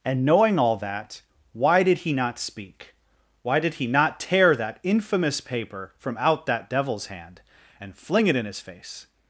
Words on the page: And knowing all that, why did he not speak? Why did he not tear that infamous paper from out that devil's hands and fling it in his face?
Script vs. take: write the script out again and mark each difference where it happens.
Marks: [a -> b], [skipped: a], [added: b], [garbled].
And knowing all that, why did he not speak? Why did he not tear that infamous paper from out that devil's [hands -> hand] and fling it in his face?